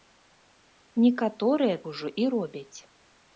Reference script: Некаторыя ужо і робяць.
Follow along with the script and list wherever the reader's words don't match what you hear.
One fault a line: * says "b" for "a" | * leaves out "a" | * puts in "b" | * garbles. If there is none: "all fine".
all fine